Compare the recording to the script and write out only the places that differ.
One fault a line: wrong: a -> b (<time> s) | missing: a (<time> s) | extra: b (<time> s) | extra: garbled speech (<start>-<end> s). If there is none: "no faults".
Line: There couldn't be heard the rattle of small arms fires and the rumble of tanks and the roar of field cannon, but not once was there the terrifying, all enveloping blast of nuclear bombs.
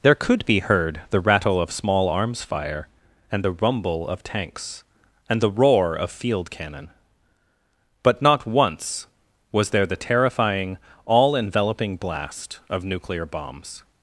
wrong: couldn't -> could (0.1 s)
wrong: fires -> fire (2.4 s)